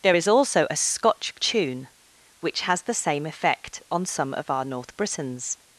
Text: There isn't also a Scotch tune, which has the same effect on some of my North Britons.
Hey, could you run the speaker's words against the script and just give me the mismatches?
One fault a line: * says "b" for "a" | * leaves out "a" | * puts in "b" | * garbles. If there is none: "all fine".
* says "is" for "isn't"
* says "our" for "my"